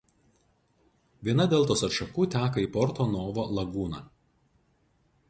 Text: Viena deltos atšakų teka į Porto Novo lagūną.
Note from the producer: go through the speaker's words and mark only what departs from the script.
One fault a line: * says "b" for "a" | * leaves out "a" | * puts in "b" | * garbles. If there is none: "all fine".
all fine